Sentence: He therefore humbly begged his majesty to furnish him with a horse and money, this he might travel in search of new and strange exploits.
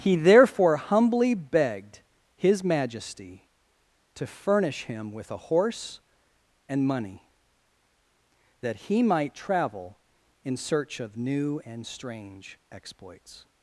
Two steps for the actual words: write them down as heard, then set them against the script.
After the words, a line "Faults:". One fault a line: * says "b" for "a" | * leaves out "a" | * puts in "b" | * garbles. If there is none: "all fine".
He therefore humbly begged his majesty to furnish him with a horse and money, that he might travel in search of new and strange exploits.
Faults:
* says "that" for "this"